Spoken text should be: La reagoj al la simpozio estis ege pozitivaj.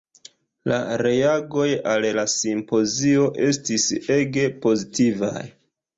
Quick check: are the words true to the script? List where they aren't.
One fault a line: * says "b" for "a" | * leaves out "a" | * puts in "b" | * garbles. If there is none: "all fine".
all fine